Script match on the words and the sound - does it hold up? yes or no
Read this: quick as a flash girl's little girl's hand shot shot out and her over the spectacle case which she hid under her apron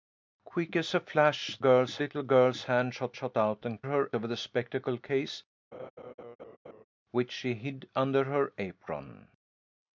no